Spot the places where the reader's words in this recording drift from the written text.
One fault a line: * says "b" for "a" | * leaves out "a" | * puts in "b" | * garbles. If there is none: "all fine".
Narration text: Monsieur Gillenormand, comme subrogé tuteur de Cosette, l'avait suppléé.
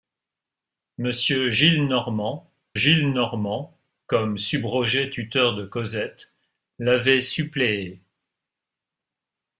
* puts in "Gillenormand"